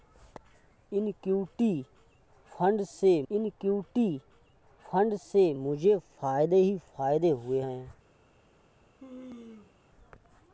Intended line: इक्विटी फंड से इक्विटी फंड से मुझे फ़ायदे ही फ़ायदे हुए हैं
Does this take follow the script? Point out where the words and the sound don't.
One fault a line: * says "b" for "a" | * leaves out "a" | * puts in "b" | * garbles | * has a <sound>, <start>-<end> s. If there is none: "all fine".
* has a sneeze, 9.0-9.7 s